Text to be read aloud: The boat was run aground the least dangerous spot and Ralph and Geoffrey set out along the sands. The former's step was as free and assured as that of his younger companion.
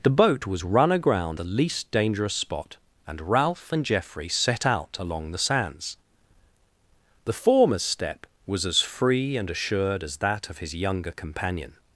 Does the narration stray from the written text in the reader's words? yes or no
no